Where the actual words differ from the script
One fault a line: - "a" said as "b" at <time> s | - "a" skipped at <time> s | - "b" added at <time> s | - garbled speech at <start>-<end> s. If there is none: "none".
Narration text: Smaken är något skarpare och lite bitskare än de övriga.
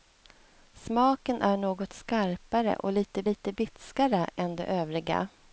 - "lite" added at 3.2 s